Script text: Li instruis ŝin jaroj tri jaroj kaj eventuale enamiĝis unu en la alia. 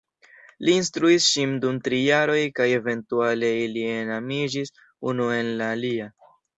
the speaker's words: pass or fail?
fail